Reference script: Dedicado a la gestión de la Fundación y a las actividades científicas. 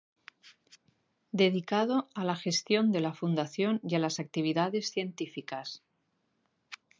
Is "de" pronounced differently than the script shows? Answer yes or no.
no